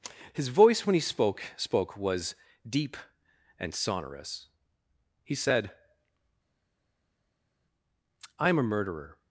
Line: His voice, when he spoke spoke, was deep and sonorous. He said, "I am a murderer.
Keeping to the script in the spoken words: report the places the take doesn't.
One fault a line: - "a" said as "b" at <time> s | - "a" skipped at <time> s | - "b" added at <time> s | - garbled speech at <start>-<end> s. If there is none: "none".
none